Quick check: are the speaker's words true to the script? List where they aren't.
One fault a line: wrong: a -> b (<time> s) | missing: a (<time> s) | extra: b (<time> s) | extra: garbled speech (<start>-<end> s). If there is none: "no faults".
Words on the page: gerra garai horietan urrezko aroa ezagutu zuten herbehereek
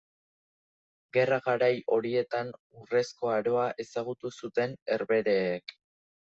no faults